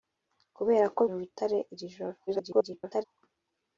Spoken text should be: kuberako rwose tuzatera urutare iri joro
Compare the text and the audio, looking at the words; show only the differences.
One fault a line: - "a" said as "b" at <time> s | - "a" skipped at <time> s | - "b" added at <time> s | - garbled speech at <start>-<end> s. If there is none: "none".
- "rwose tuzatera" skipped at 1.0 s
- garbled speech at 2.3-3.0 s